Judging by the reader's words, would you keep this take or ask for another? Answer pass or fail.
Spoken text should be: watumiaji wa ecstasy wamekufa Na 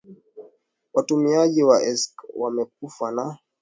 pass